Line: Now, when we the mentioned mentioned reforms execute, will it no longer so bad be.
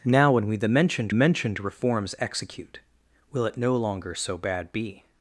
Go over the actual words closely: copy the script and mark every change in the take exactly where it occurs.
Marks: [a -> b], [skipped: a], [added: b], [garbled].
Now, when we the mentioned mentioned reforms execute, will it no longer so bad be.